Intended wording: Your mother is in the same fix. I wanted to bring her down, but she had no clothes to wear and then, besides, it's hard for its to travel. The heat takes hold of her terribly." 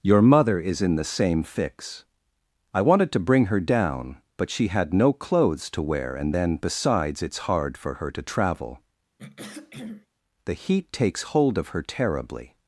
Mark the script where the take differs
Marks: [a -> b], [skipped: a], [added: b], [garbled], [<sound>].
Your mother is in the same fix. I wanted to bring her down, but she had no clothes to wear and then, besides, it's hard for [its -> her] to travel. [throat clearing] The heat takes hold of her terribly."